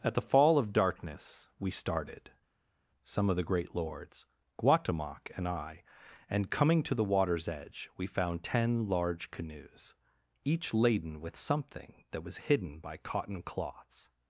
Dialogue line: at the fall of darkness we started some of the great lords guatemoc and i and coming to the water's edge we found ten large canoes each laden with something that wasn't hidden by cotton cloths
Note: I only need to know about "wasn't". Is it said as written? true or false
false